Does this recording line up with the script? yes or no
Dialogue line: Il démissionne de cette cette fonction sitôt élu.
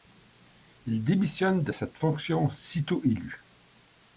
no